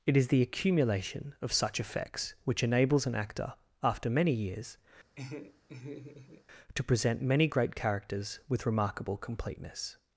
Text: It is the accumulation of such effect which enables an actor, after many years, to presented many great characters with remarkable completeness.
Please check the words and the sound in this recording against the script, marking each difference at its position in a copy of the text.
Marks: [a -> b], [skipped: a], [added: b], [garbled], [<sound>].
It is the accumulation of such [effect -> effects] which enables an actor, after many years, [laugh] to [presented -> present] many great characters with remarkable completeness.